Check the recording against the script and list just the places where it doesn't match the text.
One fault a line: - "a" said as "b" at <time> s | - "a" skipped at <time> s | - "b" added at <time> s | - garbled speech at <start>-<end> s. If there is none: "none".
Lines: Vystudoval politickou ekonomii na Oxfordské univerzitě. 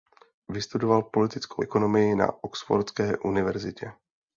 none